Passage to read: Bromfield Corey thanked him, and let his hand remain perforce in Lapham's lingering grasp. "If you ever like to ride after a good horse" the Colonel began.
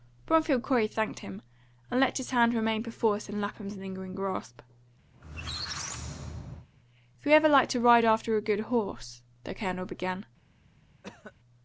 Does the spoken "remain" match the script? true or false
true